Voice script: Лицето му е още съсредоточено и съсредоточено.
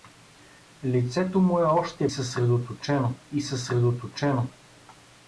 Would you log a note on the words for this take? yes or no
no